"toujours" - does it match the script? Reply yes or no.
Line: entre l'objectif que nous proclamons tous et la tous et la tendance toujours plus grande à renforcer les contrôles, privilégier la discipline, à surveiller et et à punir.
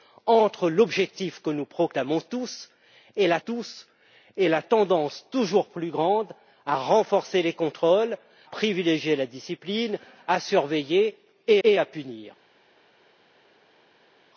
yes